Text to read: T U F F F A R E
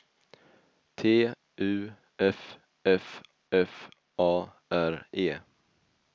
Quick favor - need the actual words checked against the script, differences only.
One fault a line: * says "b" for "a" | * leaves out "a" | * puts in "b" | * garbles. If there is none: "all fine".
all fine